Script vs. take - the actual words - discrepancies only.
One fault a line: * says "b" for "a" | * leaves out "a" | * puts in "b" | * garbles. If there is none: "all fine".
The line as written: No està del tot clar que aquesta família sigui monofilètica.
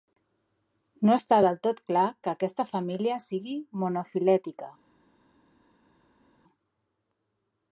all fine